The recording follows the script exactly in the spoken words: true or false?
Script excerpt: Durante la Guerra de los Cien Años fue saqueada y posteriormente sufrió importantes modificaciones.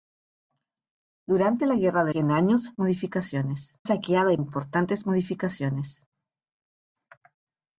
false